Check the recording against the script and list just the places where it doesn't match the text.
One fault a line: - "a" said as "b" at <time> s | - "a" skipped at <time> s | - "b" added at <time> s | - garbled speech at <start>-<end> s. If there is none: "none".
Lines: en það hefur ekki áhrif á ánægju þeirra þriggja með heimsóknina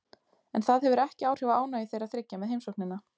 none